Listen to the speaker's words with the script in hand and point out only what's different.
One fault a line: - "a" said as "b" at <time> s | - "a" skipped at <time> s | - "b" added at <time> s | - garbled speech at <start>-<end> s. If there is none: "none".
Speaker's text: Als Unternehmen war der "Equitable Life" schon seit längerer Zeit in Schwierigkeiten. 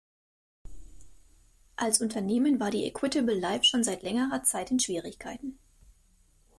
- "der" said as "die" at 2.7 s